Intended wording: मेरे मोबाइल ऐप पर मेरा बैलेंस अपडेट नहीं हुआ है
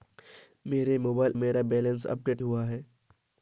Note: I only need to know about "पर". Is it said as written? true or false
false